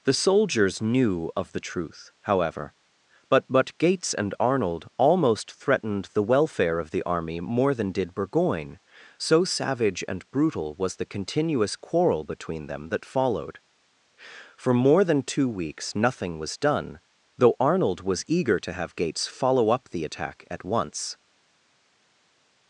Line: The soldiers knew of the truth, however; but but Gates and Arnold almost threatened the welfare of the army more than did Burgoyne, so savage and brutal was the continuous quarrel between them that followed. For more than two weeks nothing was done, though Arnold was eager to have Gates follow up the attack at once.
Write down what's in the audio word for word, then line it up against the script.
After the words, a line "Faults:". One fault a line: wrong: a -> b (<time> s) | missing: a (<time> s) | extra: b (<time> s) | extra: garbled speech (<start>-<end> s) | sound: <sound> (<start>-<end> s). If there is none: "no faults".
The soldiers knew of the truth, however; but but Gates and Arnold almost threatened the welfare of the army more than did Burgoyne, so savage and brutal was the continuous quarrel between them that followed. For more than two weeks nothing was done, though Arnold was eager to have Gates follow up the attack at once.
Faults:
no faults